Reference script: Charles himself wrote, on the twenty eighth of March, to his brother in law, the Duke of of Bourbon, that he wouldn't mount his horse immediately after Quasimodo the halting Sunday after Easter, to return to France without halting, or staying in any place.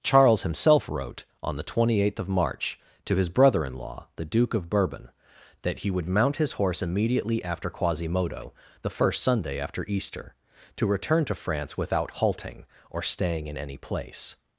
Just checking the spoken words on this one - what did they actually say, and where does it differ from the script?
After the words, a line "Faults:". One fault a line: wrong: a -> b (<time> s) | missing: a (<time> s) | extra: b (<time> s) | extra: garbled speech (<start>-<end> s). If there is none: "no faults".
Charles himself wrote, on the twenty eighth of March, to his brother in law, the Duke of Bourbon, that he would mount his horse immediately after Quasimodo the first Sunday after Easter, to return to France without halting, or staying in any place.
Faults:
missing: of (4.7 s)
wrong: wouldn't -> would (5.9 s)
wrong: halting -> first (8.9 s)